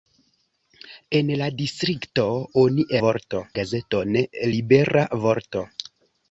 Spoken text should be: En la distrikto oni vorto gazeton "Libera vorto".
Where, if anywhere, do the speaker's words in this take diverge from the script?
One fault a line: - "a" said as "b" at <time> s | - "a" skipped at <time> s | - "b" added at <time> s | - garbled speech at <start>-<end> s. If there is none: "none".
none